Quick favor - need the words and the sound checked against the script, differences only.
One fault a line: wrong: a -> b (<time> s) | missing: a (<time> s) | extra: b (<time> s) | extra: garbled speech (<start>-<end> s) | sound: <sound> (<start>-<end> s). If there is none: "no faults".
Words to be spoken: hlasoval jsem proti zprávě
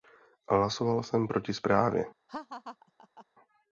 sound: laugh (2.3-3.3 s)